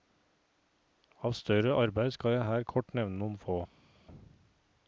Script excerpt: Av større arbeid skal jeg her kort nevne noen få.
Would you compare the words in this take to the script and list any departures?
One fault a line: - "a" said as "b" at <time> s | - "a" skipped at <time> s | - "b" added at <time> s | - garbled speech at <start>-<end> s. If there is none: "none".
none